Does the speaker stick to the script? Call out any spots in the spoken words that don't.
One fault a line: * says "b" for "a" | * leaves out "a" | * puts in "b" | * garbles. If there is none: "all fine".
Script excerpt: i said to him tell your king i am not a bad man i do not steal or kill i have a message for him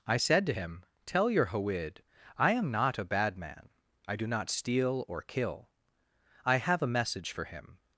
* says "hawid" for "king"